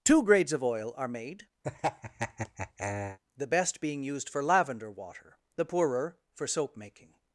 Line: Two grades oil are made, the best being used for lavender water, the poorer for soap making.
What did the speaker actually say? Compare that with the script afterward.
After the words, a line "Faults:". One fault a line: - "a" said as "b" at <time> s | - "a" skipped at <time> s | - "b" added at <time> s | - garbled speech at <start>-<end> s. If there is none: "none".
Two grades of oil are made, the best being used for lavender water, the poorer for soap making.
Faults:
- "of" added at 0.5 s